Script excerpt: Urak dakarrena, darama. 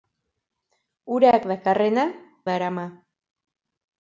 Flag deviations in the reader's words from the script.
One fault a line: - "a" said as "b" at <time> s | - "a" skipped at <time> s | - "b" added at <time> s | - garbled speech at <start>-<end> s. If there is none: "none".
none